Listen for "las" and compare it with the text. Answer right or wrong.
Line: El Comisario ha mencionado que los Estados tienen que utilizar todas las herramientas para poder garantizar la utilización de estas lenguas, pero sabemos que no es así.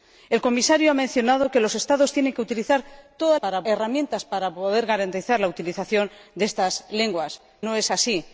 wrong